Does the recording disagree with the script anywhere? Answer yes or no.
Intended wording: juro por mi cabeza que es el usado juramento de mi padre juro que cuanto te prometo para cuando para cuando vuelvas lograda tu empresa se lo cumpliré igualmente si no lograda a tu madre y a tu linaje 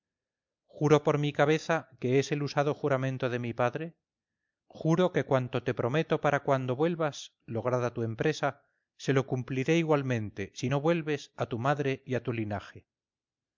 yes